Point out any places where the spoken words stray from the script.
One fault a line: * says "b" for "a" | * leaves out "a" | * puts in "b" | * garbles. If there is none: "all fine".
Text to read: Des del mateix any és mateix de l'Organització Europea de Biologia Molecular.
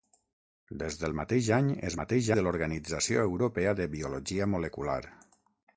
all fine